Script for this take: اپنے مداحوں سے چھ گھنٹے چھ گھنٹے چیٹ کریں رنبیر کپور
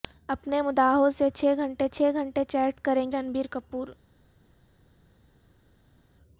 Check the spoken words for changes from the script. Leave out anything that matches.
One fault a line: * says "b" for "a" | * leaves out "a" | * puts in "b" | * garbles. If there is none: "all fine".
all fine